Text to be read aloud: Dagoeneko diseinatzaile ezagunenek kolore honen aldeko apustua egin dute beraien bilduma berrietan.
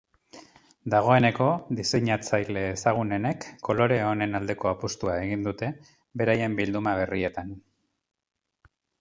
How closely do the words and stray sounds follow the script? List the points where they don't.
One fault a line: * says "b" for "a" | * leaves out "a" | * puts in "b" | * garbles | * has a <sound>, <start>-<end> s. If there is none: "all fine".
all fine